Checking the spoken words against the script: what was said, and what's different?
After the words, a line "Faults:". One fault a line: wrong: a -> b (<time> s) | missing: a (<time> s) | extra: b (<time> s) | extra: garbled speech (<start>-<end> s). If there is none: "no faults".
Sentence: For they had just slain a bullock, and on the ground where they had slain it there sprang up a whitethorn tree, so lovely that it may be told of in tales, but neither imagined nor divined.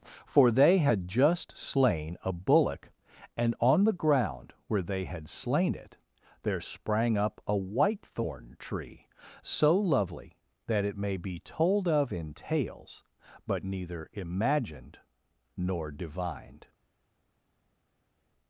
For they had just slain a bullock, and on the ground where they had slain it there sprang up a whitethorn tree, so lovely that it may be told of in tales, but neither imagined nor divined.
Faults:
no faults